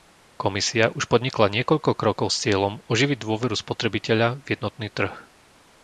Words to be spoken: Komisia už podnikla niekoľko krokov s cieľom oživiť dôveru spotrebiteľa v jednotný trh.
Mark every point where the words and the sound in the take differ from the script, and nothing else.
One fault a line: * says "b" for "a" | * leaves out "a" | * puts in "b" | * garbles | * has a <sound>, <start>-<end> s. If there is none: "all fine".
all fine